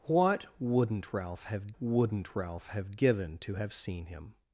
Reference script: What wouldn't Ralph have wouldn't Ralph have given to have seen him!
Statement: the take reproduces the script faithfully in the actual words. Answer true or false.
true